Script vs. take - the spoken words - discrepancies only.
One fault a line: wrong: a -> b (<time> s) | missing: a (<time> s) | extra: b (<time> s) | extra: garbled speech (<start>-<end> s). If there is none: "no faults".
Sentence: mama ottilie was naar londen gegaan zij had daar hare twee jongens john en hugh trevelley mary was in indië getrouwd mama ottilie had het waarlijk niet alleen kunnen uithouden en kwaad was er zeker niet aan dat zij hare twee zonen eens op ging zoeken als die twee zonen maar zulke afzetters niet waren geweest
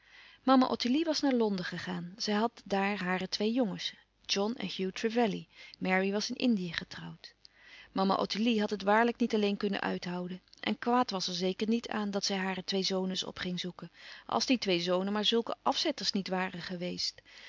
no faults